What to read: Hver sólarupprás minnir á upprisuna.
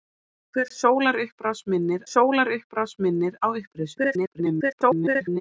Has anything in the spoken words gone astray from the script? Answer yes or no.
yes